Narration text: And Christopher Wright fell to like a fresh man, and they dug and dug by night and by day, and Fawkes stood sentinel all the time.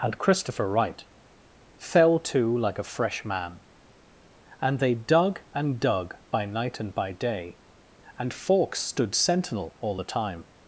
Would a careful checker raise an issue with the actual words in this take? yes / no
no